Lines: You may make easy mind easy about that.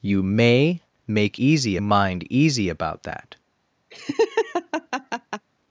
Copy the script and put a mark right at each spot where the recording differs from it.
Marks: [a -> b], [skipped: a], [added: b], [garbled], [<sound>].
You may make easy mind easy about that. [laugh]